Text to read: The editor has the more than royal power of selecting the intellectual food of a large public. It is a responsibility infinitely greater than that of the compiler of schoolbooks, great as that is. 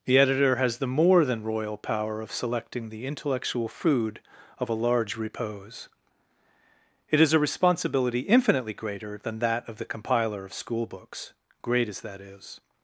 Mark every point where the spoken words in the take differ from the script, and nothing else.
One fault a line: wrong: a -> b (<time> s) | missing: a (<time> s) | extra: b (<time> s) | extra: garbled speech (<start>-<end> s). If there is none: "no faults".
wrong: public -> repose (5.2 s)